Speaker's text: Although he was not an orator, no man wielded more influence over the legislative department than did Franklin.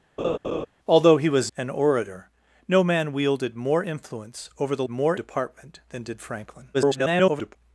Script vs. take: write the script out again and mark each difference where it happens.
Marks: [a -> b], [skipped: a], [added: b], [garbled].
Although he was [skipped: not] an orator, no man wielded more influence over the [legislative -> more] department than did Franklin. [garbled]